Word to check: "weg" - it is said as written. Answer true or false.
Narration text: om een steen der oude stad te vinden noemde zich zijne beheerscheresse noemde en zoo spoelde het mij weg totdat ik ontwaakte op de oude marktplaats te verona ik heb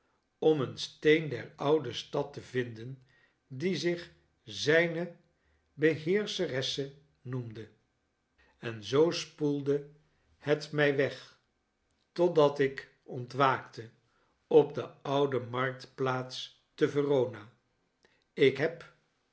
true